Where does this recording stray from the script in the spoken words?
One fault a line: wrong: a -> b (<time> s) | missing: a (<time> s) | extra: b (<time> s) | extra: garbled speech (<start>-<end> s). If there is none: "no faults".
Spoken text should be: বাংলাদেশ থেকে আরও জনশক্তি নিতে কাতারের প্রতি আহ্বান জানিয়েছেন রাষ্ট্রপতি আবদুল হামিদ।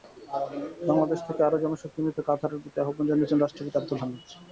no faults